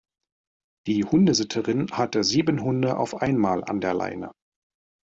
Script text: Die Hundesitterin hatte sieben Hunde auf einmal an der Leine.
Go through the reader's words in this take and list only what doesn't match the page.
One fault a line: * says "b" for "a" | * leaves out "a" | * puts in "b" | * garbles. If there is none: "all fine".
all fine